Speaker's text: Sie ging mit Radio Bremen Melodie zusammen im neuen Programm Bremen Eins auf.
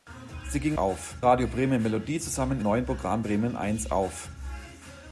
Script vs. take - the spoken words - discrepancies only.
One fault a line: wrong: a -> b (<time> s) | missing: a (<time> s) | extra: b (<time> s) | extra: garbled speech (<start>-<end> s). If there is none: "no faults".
wrong: mit -> auf (0.8 s)
missing: im (2.6 s)